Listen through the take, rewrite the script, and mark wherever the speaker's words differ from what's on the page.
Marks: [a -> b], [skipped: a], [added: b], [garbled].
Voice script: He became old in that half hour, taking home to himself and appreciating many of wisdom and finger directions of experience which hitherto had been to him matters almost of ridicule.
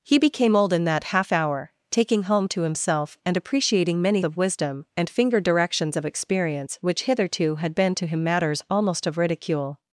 He became old in that half hour, taking home to himself and appreciating many of wisdom and finger directions of experience which hitherto had been to him matters almost of ridicule.